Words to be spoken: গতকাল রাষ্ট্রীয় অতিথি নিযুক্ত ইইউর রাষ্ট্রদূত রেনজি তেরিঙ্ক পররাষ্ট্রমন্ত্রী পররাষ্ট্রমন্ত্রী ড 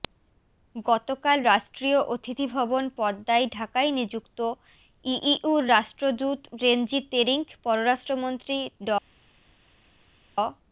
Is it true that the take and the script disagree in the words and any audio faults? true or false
true